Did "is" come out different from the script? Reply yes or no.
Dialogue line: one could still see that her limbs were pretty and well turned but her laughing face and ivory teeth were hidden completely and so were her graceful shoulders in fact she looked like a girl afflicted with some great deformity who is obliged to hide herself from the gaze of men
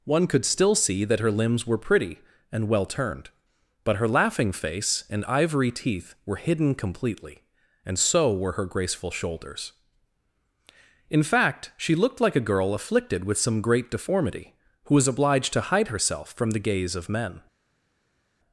yes